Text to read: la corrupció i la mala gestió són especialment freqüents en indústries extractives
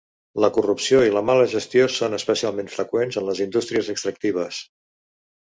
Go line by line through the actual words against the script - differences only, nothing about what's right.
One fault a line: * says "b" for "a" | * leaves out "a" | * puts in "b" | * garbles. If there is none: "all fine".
* puts in "les"